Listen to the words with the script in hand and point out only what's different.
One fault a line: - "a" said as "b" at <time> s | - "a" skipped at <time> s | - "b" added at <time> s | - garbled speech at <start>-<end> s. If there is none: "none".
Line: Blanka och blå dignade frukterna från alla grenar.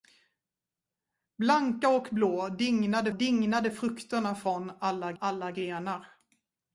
- "dignade" added at 3.1 s
- "alla" added at 5.2 s